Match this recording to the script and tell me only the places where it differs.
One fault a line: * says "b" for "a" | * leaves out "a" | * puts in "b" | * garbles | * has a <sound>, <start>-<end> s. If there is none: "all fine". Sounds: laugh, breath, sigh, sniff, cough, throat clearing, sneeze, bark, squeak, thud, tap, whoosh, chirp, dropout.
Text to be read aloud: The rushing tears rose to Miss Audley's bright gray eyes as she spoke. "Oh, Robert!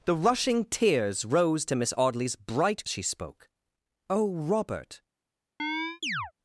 * leaves out "gray eyes as"
* has a chirp, 5.6-6.3 s